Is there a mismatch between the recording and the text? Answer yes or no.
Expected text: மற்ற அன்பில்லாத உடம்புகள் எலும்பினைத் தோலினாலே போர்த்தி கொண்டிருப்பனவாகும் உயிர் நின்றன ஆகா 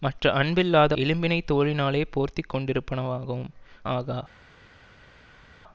yes